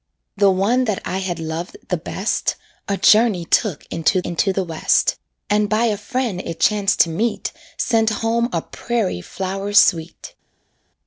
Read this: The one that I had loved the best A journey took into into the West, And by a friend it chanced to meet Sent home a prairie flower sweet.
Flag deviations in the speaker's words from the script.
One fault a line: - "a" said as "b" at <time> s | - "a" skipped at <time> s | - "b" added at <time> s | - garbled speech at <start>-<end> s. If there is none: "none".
none